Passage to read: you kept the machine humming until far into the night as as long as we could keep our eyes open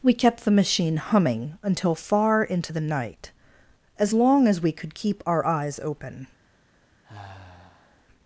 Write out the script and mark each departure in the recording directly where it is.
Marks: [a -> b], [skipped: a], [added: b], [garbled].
[you -> we] kept the machine humming until far into the night as [skipped: as] long as we could keep our eyes open